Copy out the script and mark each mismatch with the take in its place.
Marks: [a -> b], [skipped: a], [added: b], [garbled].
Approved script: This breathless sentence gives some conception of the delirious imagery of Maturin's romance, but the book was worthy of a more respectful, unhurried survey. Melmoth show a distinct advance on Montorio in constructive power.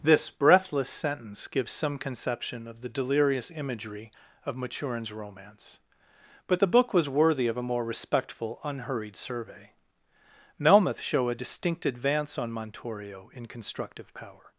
This breathless sentence gives some conception of the delirious imagery of Maturin's romance, but the book was worthy of a more respectful, unhurried survey. Melmoth show a distinct advance on Montorio in constructive power.